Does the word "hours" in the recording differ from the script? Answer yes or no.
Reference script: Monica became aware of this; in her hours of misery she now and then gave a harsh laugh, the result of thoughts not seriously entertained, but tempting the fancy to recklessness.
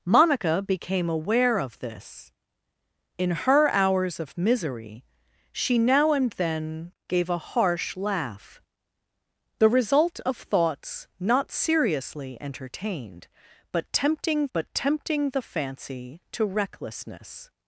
no